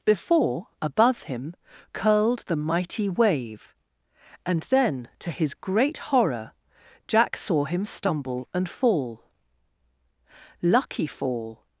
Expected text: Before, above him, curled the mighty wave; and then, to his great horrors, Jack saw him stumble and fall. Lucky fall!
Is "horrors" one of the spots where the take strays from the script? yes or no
yes